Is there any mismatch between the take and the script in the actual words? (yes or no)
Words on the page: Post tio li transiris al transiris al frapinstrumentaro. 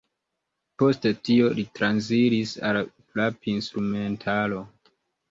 yes